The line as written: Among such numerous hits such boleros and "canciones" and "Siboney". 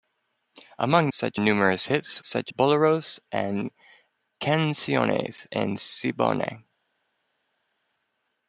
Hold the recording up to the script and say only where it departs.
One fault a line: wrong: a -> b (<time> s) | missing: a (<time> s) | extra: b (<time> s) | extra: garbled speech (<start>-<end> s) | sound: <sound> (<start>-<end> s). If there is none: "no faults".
no faults